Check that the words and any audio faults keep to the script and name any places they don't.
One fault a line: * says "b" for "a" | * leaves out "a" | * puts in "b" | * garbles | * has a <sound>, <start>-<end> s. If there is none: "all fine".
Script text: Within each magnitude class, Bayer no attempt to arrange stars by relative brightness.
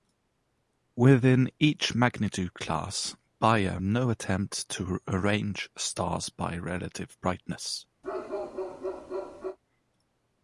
* has a bark, 8.0-9.6 s